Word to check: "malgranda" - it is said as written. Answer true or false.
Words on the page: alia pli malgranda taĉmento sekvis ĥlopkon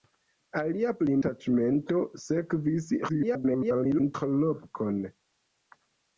false